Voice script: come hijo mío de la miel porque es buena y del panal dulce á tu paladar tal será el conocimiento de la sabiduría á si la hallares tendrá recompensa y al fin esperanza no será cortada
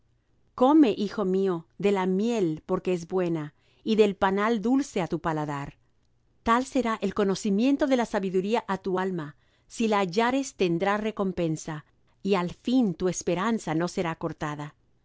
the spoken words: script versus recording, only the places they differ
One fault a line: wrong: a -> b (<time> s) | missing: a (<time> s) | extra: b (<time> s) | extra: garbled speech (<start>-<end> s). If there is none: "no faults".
extra: tu alma (8.8 s)
extra: tu (12.9 s)